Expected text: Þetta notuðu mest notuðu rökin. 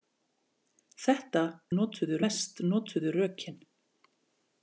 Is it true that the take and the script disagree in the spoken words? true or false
false